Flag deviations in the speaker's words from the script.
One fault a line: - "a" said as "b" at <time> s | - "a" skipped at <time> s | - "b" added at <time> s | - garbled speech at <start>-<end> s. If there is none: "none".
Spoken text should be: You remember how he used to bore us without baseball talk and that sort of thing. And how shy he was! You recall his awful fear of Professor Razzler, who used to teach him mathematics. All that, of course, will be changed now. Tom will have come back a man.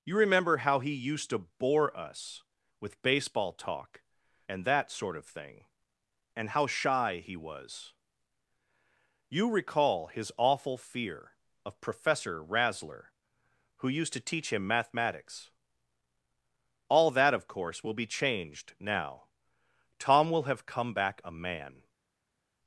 - "without" said as "with" at 2.8 s